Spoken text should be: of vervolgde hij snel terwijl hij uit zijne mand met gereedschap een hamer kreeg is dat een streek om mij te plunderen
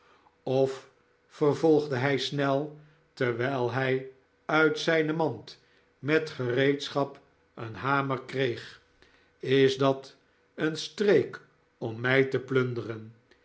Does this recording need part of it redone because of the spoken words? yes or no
no